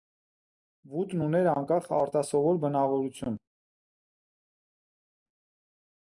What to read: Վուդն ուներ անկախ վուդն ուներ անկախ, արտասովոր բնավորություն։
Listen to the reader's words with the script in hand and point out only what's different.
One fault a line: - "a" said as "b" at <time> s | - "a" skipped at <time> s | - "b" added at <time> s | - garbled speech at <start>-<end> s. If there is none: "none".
- "վուդն ուներ անկախ" skipped at 1.9 s